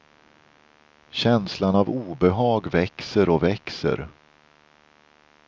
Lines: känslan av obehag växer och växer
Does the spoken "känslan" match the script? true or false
true